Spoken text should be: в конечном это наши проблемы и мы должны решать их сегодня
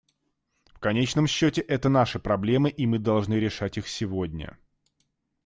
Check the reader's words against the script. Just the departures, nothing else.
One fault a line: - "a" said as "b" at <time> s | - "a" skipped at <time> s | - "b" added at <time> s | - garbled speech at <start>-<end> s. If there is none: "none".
- "счете" added at 1.3 s